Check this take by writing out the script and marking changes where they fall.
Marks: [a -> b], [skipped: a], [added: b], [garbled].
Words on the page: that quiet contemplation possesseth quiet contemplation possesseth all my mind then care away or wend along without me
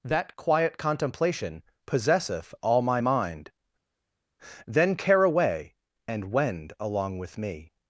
that quiet contemplation possesseth [skipped: quiet contemplation possesseth] all my mind then care away [or -> and] wend along [without -> with] me